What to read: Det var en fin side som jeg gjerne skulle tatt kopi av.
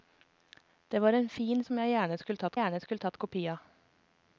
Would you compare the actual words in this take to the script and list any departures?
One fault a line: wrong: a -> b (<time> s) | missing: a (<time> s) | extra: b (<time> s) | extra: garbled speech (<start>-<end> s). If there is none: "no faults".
missing: side (1.6 s)
extra: gjerne skulle tatt (2.6 s)